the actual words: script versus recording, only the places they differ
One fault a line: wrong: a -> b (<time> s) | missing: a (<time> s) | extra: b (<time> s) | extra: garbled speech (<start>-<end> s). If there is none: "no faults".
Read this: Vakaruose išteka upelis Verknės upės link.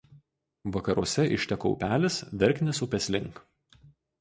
no faults